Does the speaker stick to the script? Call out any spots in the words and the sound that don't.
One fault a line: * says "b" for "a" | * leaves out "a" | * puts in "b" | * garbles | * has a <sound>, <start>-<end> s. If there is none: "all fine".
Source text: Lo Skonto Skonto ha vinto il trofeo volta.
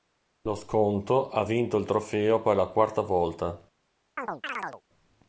* leaves out "Skonto"
* puts in "per la quarta"
* has a chirp, 4.2-4.8 s